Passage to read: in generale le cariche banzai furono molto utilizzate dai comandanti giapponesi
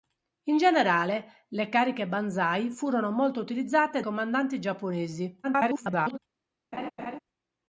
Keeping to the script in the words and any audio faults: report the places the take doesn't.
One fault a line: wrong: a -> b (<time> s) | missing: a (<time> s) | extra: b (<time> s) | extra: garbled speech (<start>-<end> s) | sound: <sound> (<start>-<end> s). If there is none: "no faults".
missing: dai (4.0 s)
extra: garbled speech (5.4-6.2 s)
sound: laugh (6.7-7.2 s)